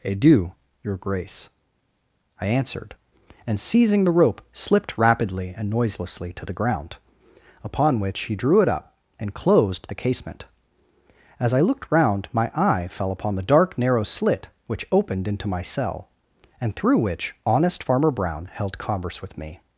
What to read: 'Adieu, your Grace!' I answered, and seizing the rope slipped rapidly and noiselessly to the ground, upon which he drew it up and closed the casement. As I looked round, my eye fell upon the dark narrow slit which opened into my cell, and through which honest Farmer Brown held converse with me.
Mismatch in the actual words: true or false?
false